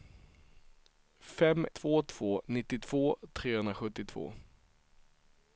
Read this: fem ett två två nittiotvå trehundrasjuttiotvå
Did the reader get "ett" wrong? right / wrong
wrong